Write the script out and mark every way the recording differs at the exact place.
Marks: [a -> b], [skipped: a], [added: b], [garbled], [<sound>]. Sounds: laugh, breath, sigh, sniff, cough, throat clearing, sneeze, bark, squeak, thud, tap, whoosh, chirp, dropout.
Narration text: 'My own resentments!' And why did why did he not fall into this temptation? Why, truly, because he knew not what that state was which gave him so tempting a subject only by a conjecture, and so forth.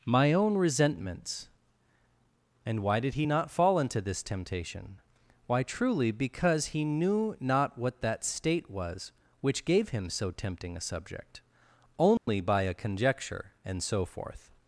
'My own resentments!' And why did [skipped: why did] he not fall into this temptation? Why, truly, because he knew not what that state was which gave him so tempting a subject only [dropout] by a conjecture, and so forth.